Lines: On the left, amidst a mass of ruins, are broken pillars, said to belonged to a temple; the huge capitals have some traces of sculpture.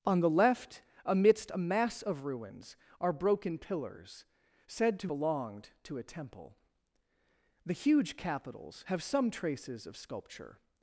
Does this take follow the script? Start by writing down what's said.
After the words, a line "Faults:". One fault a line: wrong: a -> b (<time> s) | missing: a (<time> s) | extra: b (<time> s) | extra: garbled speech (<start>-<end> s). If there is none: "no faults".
On the left, amidst a mass of ruins, are broken pillars, said to belonged to a temple; the huge capitals have some traces of sculpture.
Faults:
no faults